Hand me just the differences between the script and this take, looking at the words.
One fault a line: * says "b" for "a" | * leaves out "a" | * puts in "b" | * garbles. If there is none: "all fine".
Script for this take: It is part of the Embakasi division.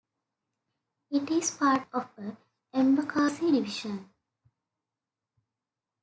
all fine